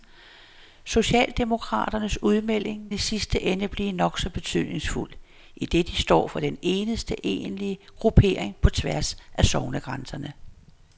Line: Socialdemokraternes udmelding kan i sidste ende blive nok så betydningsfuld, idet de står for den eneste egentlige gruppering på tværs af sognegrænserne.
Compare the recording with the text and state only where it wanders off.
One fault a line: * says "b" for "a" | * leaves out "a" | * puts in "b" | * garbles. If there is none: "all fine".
* leaves out "kan"